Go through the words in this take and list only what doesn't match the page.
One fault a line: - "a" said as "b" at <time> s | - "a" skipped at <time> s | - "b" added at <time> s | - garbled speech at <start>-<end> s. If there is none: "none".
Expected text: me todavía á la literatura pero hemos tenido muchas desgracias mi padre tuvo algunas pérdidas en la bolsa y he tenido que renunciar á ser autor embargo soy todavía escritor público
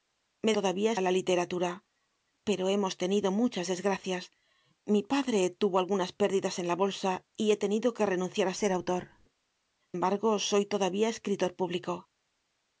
none